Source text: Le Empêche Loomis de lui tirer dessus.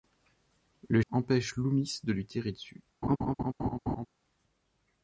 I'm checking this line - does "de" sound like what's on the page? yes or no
yes